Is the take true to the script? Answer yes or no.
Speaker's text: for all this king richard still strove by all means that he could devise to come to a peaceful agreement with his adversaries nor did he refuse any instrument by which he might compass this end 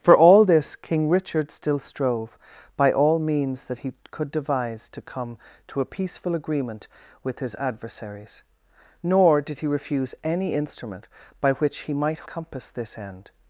yes